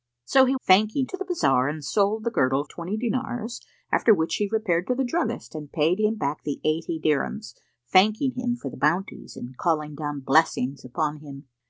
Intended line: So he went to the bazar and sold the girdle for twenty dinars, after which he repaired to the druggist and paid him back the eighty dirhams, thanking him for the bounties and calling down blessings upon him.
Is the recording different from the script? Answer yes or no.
yes